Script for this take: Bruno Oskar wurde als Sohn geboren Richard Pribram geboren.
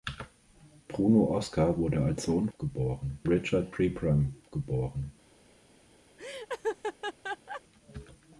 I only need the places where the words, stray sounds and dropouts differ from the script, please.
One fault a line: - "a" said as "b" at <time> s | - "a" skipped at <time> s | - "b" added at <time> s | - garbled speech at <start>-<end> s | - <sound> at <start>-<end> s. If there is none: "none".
- laugh at 6.2-7.6 s